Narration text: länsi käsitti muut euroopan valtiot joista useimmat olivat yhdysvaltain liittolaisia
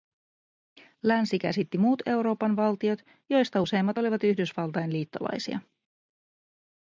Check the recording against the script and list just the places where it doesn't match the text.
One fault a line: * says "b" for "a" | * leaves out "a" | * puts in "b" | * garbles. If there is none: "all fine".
all fine